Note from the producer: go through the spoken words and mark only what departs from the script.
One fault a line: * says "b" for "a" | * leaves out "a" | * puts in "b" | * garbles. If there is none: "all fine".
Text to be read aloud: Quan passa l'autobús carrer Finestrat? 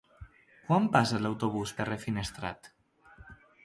all fine